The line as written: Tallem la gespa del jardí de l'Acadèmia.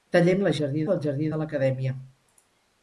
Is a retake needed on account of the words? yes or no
yes